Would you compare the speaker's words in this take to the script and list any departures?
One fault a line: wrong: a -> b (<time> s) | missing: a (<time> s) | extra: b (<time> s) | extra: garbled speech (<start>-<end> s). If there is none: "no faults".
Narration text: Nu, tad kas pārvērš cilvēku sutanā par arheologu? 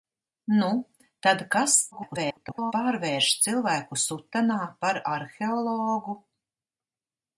extra: garbled speech (1.9-2.7 s)